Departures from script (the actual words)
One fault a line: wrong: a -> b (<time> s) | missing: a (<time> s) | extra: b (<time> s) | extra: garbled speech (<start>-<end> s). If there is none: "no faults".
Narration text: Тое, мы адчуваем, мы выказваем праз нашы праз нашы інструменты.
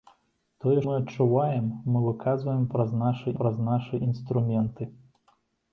no faults